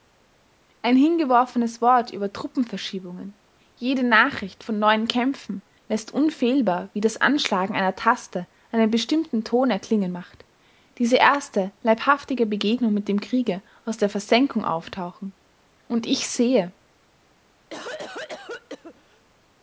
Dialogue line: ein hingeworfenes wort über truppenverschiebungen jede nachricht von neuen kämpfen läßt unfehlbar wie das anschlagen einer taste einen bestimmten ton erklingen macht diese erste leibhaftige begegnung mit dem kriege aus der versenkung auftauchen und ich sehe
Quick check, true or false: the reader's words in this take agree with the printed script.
true